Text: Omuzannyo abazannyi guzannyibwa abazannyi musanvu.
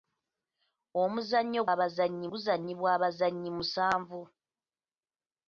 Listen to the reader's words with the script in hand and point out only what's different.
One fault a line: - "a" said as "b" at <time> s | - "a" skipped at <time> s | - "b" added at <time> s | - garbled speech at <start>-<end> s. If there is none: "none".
none